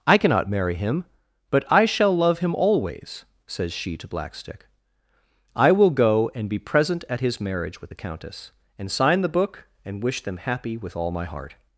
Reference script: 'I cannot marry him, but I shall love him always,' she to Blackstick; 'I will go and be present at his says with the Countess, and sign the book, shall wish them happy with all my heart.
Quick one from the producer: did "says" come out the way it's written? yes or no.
no